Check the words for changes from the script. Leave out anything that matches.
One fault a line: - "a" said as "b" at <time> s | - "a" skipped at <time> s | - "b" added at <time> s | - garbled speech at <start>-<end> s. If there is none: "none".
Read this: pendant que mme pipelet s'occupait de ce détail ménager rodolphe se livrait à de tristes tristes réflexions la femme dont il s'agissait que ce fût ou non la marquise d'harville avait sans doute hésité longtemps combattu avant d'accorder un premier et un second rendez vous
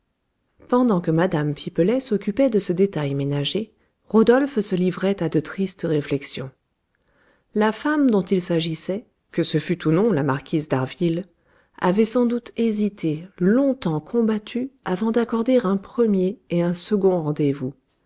- "tristes" skipped at 5.8 s